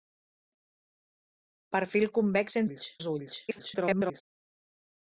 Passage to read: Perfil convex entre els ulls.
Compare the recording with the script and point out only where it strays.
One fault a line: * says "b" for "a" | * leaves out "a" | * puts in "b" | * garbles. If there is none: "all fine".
* says "ulls" for "entre"
* garbles